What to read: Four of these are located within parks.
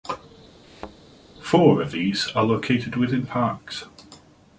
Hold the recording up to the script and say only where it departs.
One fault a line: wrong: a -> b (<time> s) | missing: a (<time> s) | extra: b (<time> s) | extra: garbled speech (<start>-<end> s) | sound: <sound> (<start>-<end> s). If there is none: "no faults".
sound: thud (0.6-1.0 s)